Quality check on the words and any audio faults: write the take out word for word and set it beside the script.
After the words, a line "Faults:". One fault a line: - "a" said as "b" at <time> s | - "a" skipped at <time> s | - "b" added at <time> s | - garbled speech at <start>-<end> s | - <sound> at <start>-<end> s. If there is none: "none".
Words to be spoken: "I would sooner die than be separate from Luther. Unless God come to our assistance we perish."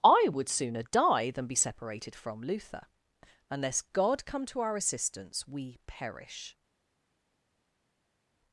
"I would sooner die than be separated from Luther. Unless God come to our assistance we perish."
Faults:
- "separate" said as "separated" at 1.6 s